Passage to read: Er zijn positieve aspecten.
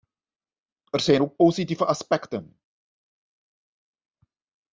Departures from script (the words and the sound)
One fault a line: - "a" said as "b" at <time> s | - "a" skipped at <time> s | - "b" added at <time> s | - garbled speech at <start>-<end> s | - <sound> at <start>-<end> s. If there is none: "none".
- "ook" added at 1.2 s